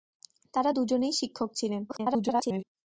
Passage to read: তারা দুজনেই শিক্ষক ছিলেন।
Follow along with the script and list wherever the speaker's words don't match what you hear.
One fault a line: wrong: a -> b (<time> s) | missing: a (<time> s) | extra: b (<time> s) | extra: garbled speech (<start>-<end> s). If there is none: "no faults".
extra: garbled speech (1.9-2.6 s)